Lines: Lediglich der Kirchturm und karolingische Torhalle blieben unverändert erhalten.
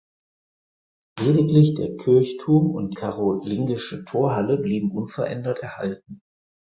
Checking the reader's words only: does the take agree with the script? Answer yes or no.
yes